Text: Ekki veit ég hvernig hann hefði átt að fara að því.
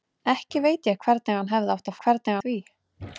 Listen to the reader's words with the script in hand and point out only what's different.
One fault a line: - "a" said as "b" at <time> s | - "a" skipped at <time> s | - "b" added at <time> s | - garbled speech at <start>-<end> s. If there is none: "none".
- "fara" said as "hvernig" at 2.1 s